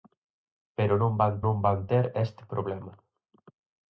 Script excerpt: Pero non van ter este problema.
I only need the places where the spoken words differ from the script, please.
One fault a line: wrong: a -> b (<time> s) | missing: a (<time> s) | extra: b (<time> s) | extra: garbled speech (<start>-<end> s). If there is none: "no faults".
extra: non van (1.4 s)